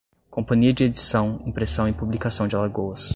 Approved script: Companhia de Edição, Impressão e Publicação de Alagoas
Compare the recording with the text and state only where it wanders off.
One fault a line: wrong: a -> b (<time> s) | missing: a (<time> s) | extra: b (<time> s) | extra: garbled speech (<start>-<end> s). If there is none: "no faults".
no faults